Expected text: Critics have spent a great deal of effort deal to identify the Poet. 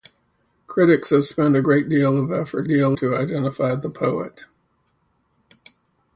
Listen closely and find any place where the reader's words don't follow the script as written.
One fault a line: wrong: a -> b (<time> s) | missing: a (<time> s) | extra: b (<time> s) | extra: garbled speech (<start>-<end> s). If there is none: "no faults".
no faults